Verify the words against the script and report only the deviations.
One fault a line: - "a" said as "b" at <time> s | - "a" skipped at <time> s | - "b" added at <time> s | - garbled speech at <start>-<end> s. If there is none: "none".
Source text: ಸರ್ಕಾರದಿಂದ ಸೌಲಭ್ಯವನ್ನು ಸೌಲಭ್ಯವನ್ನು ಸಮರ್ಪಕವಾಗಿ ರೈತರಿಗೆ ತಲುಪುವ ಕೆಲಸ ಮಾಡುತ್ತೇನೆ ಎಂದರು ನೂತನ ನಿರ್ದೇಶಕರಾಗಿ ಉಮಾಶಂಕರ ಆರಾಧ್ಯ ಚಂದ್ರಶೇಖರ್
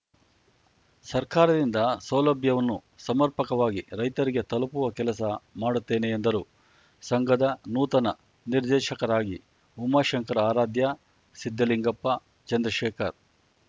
- "ಸೌಲಭ್ಯವನ್ನು" skipped at 2.8 s
- "ಸಂಘದ" added at 7.0 s
- "ಸಿದ್ದಲಿಂಗಪ್ಪ" added at 11.4 s